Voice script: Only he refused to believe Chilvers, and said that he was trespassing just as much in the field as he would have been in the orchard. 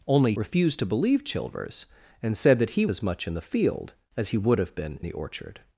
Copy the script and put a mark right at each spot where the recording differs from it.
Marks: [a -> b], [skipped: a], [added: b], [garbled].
Only [skipped: he] refused to believe Chilvers, and said that he [skipped: was trespassing just] as much in the field as he would have been [skipped: in] the orchard.